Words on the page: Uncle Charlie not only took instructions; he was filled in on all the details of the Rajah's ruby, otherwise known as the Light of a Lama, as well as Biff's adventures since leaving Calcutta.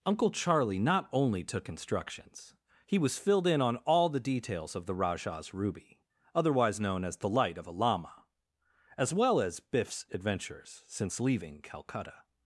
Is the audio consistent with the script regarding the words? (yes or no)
yes